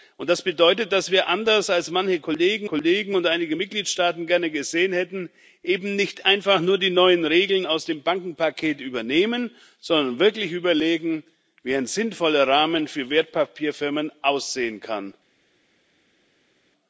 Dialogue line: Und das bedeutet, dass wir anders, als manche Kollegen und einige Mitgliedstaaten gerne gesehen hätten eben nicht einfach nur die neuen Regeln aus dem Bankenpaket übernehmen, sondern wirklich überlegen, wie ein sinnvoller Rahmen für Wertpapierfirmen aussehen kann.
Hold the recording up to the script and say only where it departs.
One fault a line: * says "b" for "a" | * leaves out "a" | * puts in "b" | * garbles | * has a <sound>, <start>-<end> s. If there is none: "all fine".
* puts in "Kollegen"